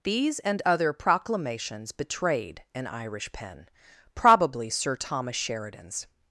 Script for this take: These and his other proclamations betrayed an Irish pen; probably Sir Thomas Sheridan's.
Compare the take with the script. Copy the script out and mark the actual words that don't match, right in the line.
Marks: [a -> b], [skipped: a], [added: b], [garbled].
These and [skipped: his] other proclamations betrayed an Irish pen; probably Sir Thomas Sheridan's.